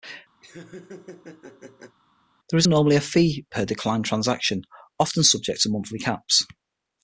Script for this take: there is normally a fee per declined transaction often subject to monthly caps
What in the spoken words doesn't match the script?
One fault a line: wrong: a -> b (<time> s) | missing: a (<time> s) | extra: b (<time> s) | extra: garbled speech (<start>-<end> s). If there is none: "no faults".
no faults